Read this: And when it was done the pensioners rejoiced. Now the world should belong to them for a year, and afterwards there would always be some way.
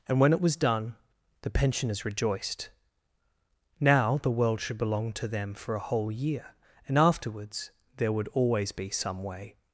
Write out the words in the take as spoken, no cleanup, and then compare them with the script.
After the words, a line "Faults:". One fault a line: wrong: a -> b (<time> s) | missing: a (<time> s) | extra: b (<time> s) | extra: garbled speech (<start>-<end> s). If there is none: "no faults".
And when it was done the pensioners rejoiced. Now the world should belong to them for a whole year, and afterwards there would always be some way.
Faults:
extra: whole (5.8 s)